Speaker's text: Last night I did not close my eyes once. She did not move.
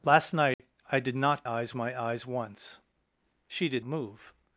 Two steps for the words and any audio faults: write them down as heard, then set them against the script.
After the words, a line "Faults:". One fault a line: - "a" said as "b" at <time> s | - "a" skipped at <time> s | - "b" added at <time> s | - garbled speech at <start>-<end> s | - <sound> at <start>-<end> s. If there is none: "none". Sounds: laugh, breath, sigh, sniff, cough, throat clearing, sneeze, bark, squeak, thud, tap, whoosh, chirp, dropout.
Last night I did not eyes my eyes once. She did move.
Faults:
- dropout at 0.5-0.6 s
- "close" said as "eyes" at 1.5 s
- "not" skipped at 3.9 s